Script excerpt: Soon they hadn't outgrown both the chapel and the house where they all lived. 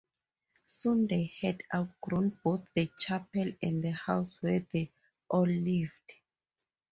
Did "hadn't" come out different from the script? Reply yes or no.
yes